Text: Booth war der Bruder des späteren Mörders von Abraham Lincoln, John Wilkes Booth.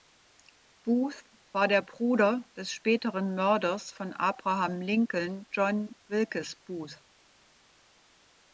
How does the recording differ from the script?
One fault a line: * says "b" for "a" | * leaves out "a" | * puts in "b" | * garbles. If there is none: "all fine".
all fine